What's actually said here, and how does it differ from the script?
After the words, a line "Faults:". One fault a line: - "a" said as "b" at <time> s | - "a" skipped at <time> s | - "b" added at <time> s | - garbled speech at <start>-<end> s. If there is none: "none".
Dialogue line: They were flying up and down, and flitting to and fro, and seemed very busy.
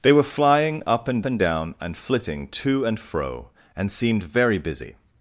They were flying up and and down, and flitting to and fro, and seemed very busy.
Faults:
- "and" added at 1.2 s